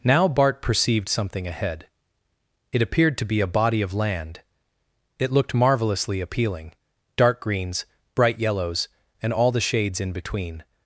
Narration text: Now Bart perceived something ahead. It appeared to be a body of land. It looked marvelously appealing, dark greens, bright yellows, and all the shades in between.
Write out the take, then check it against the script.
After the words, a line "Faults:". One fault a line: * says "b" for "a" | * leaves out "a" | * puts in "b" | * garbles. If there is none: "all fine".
Now Bart perceived something ahead. It appeared to be a body of land. It looked marvelously appealing, dark greens, bright yellows, and all the shades in between.
Faults:
all fine